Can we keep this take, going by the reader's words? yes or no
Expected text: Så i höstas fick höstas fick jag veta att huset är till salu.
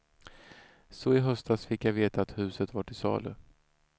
no